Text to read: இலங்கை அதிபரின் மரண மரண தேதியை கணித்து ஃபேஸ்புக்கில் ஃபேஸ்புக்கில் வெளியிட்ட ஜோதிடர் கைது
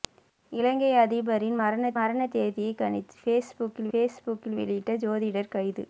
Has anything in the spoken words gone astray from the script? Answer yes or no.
no